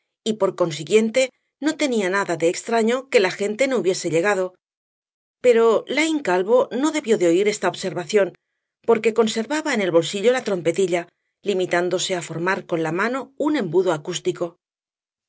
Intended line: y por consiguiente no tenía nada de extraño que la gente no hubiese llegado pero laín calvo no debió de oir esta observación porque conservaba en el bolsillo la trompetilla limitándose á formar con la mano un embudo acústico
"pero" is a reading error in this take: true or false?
false